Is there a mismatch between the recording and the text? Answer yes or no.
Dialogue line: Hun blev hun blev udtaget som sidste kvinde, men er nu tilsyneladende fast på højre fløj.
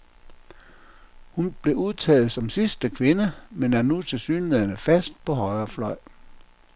yes